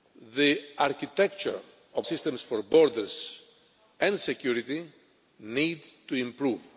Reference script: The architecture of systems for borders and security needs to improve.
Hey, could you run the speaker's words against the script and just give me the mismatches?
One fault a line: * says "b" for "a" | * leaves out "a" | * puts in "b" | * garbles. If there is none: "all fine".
all fine